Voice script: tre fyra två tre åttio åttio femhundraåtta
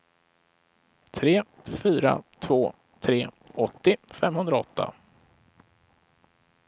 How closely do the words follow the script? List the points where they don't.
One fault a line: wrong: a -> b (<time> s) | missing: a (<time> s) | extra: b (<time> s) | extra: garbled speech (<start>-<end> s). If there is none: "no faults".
missing: åttio (4.0 s)